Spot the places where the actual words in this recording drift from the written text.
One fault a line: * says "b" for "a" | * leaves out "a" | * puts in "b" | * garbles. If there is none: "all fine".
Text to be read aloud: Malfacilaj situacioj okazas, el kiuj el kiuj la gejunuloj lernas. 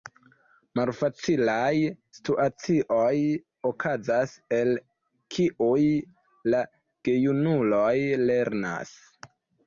* leaves out "el kiuj"